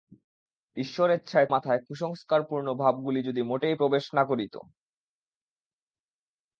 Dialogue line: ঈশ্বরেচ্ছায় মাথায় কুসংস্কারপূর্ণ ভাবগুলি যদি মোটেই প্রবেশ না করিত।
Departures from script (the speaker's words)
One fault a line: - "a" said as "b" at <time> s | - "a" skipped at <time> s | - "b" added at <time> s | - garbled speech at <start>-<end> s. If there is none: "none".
none